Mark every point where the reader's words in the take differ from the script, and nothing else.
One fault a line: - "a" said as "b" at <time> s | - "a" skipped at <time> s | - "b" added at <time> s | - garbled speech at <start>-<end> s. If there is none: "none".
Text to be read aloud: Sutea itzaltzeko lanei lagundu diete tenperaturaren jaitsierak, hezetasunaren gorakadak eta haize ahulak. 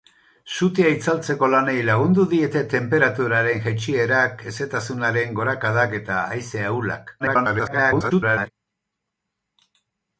- garbled speech at 7.2-8.5 s